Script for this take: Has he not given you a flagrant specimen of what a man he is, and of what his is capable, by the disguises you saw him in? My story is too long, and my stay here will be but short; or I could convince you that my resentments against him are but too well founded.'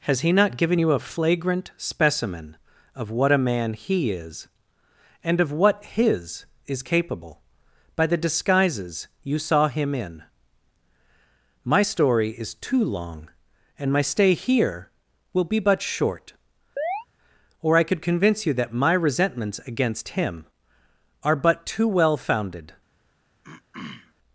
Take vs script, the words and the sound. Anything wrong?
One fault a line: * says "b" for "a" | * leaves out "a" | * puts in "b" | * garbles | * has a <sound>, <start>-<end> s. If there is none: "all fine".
* has a chirp, 16.8-17.1 s
* has a throat clearing, 23.4-24.1 s